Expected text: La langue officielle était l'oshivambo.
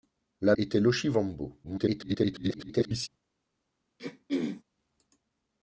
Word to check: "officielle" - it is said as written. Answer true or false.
false